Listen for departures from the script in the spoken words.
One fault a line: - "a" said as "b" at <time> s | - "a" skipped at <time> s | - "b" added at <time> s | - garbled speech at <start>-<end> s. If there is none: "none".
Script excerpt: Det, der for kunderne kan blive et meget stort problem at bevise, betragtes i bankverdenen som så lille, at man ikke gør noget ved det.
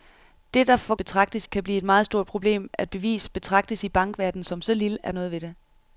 - "kunderne" said as "betragtes" at 0.9 s
- "man ikke gør" skipped at 5.2 s